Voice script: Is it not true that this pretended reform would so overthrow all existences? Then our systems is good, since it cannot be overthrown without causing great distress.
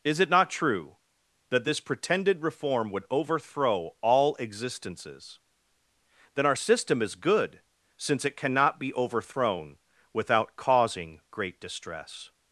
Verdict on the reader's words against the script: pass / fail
fail